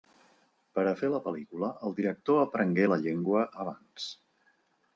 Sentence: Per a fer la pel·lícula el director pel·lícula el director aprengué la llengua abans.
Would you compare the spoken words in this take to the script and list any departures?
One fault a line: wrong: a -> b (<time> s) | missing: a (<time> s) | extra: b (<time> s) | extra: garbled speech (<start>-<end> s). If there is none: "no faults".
missing: pel·lícula el director (2.4 s)